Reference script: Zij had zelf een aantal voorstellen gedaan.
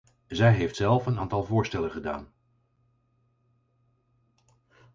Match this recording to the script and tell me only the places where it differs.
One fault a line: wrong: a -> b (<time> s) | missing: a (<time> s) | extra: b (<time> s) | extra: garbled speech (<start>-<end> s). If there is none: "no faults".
wrong: had -> heeft (0.5 s)